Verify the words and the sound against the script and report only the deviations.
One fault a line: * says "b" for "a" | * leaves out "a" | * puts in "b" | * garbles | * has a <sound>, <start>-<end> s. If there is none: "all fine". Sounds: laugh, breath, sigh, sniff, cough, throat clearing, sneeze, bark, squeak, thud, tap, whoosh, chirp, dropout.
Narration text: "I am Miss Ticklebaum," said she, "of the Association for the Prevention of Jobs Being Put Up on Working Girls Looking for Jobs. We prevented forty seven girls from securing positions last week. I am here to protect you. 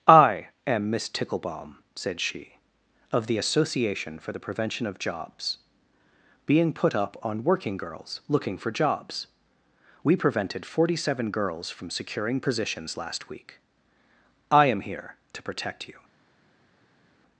all fine